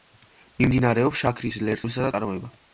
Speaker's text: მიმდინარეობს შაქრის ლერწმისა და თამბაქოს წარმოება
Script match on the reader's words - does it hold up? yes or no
no